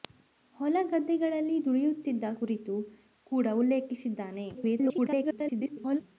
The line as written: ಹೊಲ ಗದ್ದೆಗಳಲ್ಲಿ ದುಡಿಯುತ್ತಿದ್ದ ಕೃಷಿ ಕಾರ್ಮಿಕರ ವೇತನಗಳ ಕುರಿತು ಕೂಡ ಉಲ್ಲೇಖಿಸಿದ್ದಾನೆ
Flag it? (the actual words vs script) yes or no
yes